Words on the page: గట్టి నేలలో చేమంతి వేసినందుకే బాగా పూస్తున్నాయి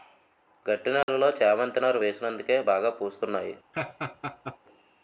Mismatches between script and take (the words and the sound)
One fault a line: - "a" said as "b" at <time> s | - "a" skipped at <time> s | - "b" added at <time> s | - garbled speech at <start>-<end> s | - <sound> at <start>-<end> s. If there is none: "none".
- dropout at 1.0-1.1 s
- "నారు" added at 1.8 s
- laugh at 3.7-4.6 s